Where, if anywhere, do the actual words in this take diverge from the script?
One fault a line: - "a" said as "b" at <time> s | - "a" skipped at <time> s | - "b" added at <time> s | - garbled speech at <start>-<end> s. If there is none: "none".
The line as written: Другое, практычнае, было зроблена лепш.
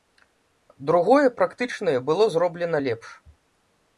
none